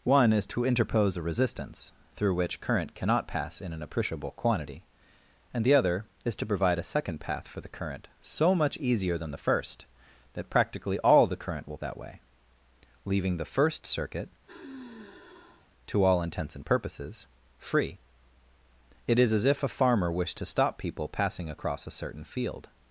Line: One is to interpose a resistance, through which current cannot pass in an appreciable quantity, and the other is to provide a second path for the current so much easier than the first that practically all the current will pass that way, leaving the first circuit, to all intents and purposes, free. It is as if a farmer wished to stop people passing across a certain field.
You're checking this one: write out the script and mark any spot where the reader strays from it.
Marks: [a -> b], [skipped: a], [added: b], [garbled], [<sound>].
One is to interpose a resistance, through which current cannot pass in an appreciable quantity, and the other is to provide a second path for the current so much easier than the first that practically all the current will [skipped: pass] that way, leaving the first circuit, [sigh] to all intents and purposes, free. It is as if a farmer wished to stop people passing across a certain field.